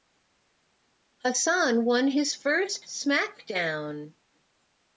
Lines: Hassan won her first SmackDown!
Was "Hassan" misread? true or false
false